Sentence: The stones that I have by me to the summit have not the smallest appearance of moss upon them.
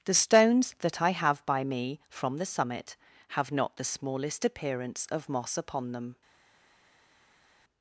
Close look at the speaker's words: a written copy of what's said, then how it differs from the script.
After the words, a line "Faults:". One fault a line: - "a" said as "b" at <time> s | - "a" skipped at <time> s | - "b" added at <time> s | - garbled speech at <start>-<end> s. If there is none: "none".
The stones that I have by me from the summit have not the smallest appearance of moss upon them.
Faults:
- "to" said as "from" at 2.1 s